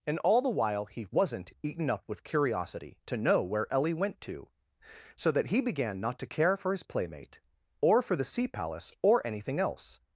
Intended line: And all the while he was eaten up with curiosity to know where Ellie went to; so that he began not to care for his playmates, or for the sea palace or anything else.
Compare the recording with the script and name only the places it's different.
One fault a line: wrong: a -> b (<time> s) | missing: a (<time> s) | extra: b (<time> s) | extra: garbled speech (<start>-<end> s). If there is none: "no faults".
wrong: was -> wasn't (1.1 s)
wrong: playmates -> playmate (6.8 s)